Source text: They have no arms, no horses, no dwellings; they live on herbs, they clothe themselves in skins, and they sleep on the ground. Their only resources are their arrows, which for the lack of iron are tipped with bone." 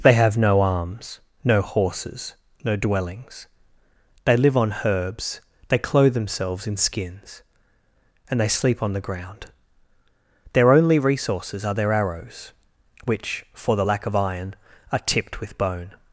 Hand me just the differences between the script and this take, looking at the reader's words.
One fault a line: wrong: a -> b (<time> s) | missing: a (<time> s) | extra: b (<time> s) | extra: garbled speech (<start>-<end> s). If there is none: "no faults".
no faults